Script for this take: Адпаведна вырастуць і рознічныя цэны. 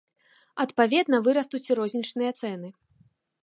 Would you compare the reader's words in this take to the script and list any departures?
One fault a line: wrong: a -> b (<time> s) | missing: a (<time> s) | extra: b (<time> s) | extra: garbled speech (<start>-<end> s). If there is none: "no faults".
no faults